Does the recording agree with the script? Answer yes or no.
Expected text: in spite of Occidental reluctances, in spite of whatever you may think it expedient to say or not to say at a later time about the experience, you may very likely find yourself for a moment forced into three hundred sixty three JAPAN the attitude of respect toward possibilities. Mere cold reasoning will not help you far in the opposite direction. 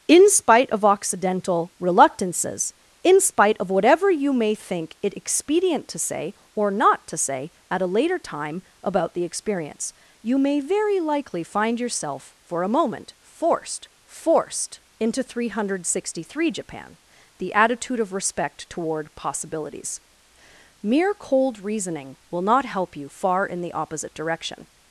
no